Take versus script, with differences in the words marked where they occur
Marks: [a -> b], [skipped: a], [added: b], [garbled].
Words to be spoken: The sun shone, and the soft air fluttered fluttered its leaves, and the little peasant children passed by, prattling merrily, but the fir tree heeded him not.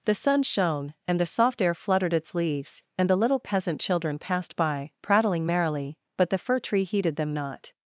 The sun shone, and the soft air fluttered [skipped: fluttered] its leaves, and the little peasant children passed by, prattling merrily, but the fir tree heeded [him -> them] not.